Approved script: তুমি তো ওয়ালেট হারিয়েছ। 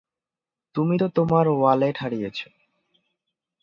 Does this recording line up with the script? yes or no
no